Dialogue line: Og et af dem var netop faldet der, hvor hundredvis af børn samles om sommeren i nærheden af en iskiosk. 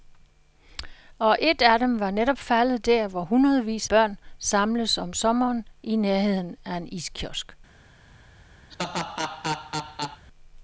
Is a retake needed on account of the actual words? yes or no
yes